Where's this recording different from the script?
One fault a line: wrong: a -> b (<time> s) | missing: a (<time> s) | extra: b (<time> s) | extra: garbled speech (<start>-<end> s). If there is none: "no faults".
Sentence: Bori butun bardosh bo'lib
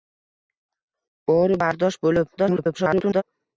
missing: butun (1.6 s)
extra: garbled speech (2.4-3.2 s)